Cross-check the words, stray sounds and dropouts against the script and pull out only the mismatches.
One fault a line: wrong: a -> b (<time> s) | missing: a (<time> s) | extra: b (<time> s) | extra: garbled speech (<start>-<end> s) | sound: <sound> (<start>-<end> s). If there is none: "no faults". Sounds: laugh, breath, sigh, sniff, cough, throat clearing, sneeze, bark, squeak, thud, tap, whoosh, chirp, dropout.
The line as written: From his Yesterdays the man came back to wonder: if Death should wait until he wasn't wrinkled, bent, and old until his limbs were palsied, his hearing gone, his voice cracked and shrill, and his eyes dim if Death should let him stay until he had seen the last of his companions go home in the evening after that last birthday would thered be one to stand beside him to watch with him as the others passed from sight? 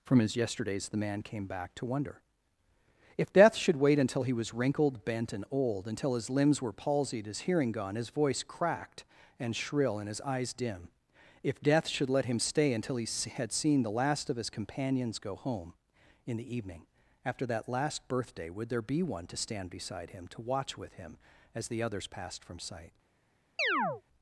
wrong: wasn't -> was (4.3 s)
wrong: thered -> there (18.7 s)
sound: chirp (23.6-24.0 s)